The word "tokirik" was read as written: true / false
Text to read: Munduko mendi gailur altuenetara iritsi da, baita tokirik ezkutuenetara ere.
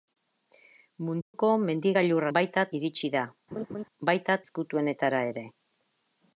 false